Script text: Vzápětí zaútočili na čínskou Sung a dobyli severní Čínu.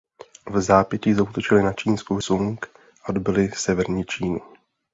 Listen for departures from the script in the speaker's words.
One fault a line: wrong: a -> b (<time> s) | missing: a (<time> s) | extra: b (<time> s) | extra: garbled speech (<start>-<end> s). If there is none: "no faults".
no faults